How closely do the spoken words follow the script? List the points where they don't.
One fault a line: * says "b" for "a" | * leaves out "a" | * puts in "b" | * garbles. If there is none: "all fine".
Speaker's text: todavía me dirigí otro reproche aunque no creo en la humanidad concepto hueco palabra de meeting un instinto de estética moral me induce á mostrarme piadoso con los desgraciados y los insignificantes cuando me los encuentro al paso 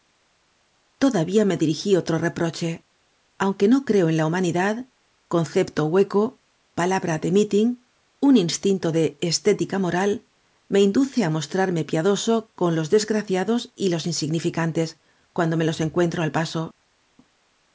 all fine